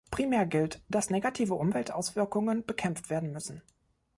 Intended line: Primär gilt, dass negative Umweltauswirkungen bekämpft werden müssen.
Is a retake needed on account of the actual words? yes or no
no